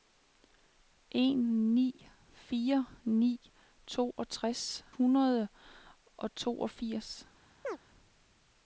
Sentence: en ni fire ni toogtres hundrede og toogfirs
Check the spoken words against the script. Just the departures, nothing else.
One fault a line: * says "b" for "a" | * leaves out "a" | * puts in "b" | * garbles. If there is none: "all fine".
all fine